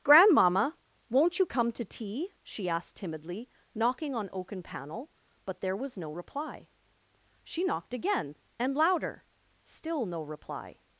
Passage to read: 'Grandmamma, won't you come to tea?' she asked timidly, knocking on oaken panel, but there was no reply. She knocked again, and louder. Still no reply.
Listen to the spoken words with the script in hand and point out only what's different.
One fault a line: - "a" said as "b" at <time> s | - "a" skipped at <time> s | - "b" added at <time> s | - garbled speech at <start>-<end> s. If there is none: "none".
none